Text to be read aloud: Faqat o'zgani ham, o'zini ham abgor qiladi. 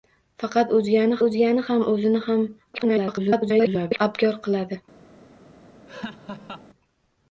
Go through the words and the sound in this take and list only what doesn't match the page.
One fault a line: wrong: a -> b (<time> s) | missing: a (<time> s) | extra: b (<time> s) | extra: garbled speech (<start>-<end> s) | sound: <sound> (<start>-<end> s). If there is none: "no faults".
extra: o'zgani (1.2 s)
extra: garbled speech (2.7-4.0 s)
sound: laugh (5.9-6.7 s)